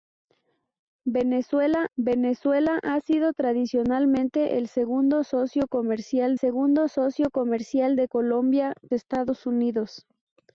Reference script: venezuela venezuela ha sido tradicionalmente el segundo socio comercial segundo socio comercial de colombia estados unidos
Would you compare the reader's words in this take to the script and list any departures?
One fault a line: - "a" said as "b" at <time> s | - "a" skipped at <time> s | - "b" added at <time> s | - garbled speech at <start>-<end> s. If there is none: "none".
none